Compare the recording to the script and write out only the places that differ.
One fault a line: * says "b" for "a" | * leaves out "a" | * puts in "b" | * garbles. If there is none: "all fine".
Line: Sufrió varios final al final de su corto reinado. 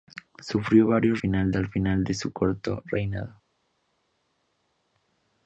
all fine